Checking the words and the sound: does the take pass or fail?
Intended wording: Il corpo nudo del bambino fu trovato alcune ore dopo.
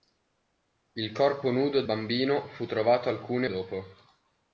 fail